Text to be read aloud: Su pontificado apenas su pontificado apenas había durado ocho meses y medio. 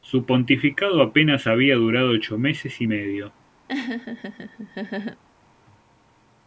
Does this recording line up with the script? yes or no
no